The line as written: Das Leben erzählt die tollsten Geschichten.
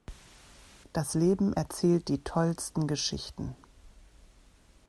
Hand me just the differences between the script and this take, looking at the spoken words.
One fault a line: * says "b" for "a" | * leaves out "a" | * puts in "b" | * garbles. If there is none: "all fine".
all fine